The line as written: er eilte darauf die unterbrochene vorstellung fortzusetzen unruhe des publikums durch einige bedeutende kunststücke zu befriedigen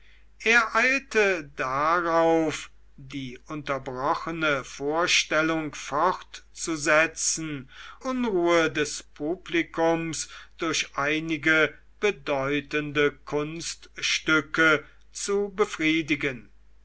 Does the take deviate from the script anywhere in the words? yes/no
no